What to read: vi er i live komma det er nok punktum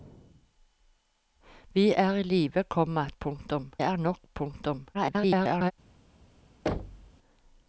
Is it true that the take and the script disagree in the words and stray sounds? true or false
true